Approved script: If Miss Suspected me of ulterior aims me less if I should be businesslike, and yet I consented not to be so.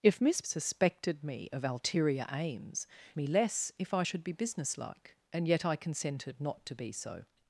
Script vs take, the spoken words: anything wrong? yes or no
no